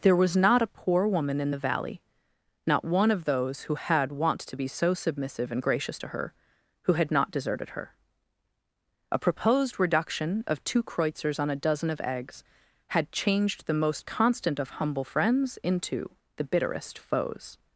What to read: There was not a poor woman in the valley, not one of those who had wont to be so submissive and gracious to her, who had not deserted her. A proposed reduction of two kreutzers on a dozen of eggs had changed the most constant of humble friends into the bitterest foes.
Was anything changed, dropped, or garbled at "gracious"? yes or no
no